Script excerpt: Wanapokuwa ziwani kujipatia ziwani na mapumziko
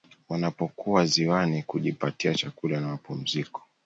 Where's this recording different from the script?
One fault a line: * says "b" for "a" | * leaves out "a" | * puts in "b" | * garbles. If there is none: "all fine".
* says "chakula" for "ziwani"